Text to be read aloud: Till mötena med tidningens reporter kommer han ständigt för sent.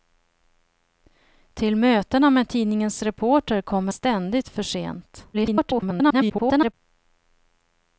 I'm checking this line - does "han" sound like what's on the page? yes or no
no